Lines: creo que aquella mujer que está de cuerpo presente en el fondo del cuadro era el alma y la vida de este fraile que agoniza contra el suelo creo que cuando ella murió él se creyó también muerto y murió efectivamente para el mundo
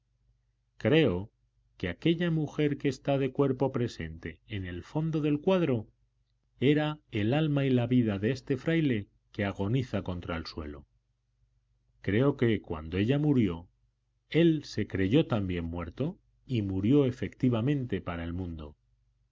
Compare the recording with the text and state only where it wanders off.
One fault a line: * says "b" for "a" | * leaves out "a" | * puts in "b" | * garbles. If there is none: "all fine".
all fine